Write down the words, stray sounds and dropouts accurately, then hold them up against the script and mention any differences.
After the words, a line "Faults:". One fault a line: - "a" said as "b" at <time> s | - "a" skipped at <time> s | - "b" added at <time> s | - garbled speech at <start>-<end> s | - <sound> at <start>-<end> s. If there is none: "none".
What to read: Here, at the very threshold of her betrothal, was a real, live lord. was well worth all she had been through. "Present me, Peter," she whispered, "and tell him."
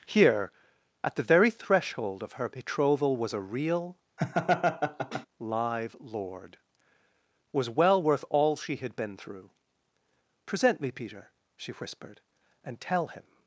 Here, at the very threshold of her betrothal, was a real, live lord. was well worth all she had been through. "Present me, Peter," she whispered, "and tell him."
Faults:
- laugh at 4.2-5.3 s